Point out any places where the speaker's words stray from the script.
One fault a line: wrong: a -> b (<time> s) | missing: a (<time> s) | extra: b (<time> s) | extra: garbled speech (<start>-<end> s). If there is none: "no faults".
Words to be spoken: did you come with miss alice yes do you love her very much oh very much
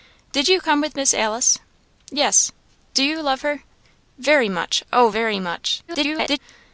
extra: garbled speech (5.9-6.4 s)